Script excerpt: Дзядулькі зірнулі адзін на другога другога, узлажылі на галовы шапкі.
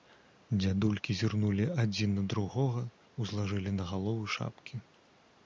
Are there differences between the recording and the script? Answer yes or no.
yes